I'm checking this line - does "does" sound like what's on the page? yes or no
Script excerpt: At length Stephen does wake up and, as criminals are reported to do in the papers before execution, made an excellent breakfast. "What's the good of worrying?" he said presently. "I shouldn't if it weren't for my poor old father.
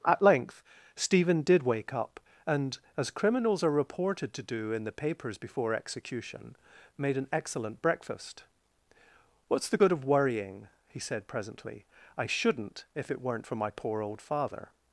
no